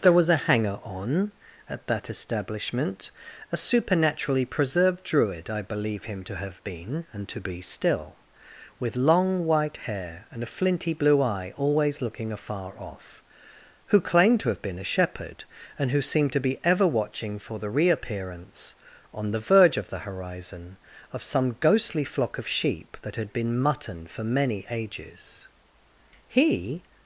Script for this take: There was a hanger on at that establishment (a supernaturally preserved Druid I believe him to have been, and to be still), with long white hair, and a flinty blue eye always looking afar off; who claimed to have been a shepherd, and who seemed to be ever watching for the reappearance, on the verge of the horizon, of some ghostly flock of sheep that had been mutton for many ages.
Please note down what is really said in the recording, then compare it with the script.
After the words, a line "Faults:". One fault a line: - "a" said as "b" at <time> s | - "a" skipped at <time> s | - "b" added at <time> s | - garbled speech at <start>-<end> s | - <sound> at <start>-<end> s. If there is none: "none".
There was a hanger on at that establishment (a supernaturally preserved Druid I believe him to have been, and to be still), with long white hair, and a flinty blue eye always looking afar off; who claimed to have been a shepherd, and who seemed to be ever watching for the reappearance, on the verge of the horizon, of some ghostly flock of sheep that had been mutton for many ages. He
Faults:
- "He" added at 26.3 s